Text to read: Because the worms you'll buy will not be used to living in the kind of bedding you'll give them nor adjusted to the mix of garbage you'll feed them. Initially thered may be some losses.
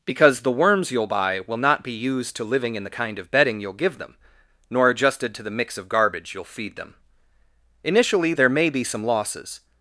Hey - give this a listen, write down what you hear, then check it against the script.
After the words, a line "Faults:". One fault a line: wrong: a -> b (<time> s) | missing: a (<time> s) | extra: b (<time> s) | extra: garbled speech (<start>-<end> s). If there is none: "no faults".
Because the worms you'll buy will not be used to living in the kind of bedding you'll give them nor adjusted to the mix of garbage you'll feed them. Initially there may be some losses.
Faults:
wrong: thered -> there (8.3 s)